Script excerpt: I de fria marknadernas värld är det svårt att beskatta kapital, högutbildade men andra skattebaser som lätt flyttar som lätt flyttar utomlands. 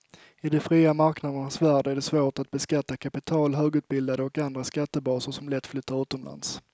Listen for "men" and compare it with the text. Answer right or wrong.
wrong